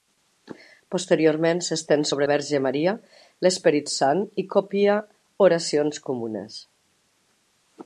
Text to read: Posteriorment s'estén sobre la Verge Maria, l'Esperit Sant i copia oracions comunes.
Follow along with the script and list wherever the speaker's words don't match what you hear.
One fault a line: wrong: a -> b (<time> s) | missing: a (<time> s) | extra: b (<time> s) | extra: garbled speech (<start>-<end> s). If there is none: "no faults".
missing: la (2.3 s)